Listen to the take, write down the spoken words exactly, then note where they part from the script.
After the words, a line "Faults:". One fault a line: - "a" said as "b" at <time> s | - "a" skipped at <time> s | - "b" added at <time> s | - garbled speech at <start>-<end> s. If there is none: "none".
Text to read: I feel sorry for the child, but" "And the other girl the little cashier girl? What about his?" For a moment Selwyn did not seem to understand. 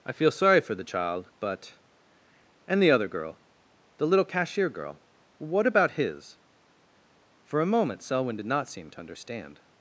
I feel sorry for the child, but" "And the other girl the little cashier girl? What about his?" For a moment Selwyn did not seem to understand.
Faults:
none